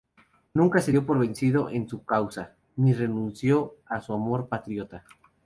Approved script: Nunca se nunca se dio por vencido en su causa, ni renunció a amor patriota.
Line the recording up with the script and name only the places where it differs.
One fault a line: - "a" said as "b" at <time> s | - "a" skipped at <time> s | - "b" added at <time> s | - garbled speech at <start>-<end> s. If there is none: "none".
- "nunca se" skipped at 0.9 s
- "su" added at 4.0 s